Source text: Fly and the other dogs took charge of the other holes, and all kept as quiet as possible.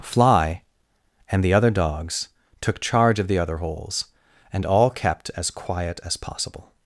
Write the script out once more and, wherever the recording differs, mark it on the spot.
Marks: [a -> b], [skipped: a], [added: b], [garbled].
Fly and the other dogs took charge of the other holes, and all kept as quiet as possible.